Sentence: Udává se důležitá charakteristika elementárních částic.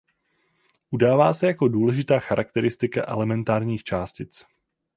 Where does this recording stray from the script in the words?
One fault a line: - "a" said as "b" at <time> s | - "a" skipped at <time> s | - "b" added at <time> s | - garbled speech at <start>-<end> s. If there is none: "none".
- "jako" added at 1.5 s